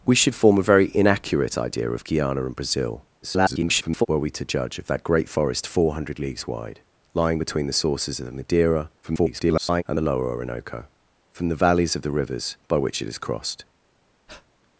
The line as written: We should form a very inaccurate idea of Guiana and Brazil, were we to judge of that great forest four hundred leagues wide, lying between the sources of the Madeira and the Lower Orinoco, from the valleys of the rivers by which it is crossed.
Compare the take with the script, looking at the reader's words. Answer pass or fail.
fail